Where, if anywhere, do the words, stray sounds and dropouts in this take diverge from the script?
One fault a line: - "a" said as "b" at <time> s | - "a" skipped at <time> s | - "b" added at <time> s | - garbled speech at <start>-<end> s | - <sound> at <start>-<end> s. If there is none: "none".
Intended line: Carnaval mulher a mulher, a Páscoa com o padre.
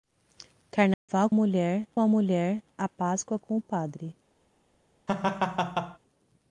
- dropout at 0.9-1.1 s
- laugh at 5.1-6.0 s